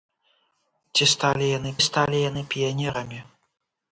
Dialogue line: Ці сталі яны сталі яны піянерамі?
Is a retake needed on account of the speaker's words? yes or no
no